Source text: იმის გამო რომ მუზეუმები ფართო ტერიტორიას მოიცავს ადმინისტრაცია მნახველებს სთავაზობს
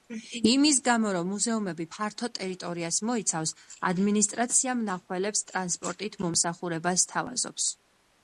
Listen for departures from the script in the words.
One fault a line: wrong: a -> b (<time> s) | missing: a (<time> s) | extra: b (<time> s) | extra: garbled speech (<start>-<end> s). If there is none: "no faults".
extra: ტრანსპორტით მომსახურებას (5.5 s)